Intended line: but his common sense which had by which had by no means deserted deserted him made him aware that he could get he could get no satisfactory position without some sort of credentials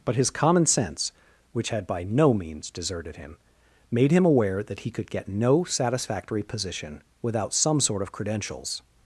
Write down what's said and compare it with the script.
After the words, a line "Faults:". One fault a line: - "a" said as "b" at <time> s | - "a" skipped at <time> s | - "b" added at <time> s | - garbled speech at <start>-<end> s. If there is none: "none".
but his common sense which had by no means deserted him made him aware that he could get no satisfactory position without some sort of credentials
Faults:
- "which had by" skipped at 2.0 s
- "deserted" skipped at 3.2 s
- "he could get" skipped at 5.3 s